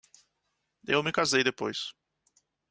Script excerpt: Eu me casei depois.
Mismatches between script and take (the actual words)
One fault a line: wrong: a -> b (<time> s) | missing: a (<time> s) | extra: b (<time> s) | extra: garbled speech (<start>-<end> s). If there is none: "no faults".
no faults